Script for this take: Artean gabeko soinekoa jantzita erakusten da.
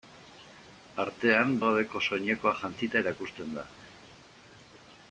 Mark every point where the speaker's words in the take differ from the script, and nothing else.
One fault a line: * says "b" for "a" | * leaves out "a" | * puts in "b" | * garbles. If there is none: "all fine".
all fine